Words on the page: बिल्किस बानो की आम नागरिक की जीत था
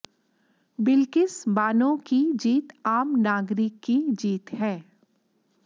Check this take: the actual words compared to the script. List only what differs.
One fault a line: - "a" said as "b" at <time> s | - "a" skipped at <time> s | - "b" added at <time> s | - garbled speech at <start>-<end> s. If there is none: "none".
- "जीत" added at 2.3 s
- "था" said as "है" at 4.5 s